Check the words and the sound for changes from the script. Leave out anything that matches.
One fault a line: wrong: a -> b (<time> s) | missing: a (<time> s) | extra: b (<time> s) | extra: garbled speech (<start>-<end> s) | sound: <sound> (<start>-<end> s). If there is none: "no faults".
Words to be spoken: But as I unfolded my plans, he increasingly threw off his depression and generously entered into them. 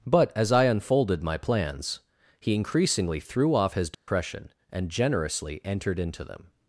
sound: dropout (3.9-4.1 s)